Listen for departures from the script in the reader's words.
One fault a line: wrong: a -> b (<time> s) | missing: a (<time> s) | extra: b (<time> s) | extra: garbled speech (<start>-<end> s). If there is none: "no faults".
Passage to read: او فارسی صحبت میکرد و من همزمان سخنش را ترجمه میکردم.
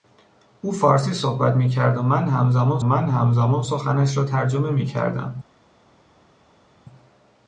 extra: من همزمان (2.8 s)